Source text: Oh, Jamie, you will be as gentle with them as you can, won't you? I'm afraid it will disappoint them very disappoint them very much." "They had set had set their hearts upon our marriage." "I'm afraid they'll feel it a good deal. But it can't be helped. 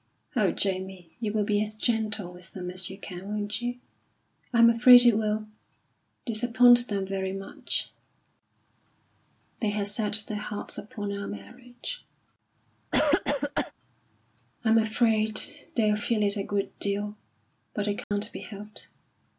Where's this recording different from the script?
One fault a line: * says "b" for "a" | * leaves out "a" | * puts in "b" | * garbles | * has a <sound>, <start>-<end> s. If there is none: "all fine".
* leaves out "disappoint them very"
* leaves out "had set"
* has a cough, 12.9-13.7 s
* has a dropout, 18.0-18.1 s